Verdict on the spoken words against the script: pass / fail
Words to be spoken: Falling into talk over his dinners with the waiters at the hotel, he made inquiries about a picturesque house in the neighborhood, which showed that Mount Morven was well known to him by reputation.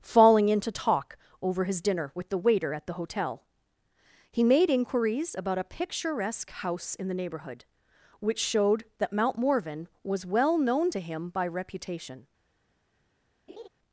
fail